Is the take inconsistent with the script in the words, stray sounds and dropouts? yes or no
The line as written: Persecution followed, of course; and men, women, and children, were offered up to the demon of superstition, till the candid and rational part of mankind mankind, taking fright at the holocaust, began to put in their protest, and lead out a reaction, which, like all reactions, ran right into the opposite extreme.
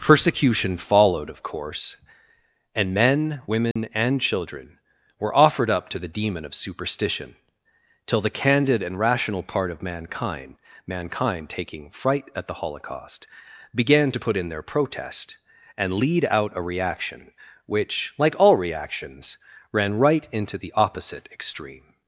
yes